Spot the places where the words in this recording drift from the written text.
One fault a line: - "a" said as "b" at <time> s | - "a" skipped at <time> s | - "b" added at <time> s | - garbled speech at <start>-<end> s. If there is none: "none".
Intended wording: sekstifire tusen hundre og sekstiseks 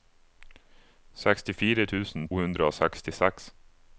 none